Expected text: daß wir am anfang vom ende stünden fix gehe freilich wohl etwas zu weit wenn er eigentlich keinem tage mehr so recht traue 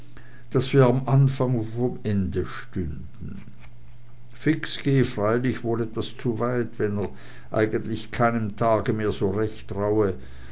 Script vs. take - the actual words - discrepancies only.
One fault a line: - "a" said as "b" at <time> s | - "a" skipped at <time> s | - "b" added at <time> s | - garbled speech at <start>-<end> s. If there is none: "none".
none